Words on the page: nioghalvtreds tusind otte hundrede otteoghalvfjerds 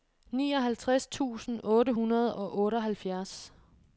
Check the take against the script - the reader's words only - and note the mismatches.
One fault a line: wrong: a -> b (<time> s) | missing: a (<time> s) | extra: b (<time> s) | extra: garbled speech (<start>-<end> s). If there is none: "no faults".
extra: og (2.4 s)